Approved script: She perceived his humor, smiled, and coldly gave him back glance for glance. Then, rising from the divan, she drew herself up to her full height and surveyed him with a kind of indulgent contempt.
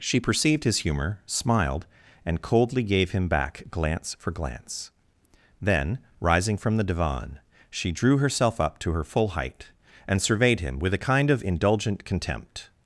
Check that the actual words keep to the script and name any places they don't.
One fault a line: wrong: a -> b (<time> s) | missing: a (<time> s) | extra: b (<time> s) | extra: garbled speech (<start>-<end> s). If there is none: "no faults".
no faults